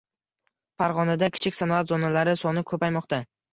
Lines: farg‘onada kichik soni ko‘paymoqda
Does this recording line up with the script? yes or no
no